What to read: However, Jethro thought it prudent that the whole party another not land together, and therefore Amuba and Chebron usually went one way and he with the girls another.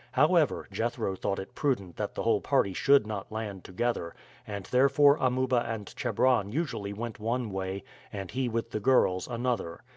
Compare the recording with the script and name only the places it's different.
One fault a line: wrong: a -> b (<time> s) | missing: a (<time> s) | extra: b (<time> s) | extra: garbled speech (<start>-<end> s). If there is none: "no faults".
wrong: another -> should (2.7 s)